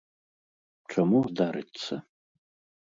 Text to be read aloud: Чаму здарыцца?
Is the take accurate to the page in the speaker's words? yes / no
yes